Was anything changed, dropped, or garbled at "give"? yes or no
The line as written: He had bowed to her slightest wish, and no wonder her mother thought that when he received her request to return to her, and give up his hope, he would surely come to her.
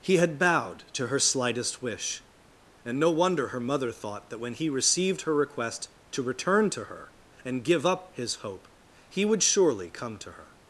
no